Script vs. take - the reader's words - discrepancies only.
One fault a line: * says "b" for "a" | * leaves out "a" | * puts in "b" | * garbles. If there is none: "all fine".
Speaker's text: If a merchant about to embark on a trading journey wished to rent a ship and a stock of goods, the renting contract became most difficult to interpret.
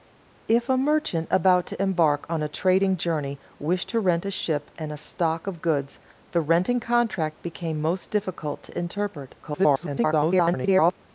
* garbles